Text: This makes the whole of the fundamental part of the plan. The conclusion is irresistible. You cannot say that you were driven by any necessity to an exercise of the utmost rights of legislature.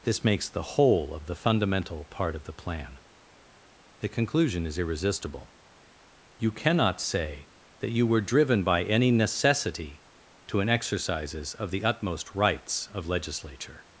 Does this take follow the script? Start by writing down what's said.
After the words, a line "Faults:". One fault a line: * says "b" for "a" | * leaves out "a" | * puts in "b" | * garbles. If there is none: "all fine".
This makes the whole of the fundamental part of the plan. The conclusion is irresistible. You cannot say that you were driven by any necessity to an exercises of the utmost rights of legislature.
Faults:
* says "exercises" for "exercise"